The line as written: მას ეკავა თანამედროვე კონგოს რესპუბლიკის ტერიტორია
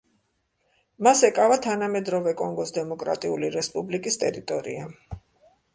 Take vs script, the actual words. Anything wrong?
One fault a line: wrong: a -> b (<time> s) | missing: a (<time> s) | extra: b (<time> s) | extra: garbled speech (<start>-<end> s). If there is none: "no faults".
extra: დემოკრატიული (2.8 s)